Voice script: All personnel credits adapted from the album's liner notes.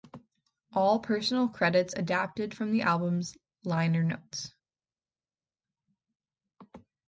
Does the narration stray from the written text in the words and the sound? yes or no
no